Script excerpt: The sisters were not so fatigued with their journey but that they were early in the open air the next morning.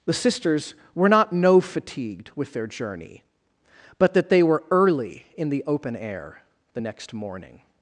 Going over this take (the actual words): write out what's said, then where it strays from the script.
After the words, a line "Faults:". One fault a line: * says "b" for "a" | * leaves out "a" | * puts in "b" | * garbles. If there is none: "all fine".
The sisters were not no fatigued with their journey but that they were early in the open air the next morning.
Faults:
* says "no" for "so"